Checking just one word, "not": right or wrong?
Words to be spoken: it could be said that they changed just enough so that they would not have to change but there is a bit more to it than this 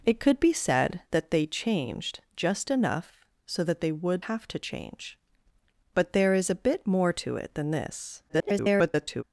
wrong